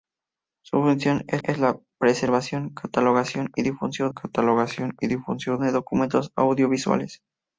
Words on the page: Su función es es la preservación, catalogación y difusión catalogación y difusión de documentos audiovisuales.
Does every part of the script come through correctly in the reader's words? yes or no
yes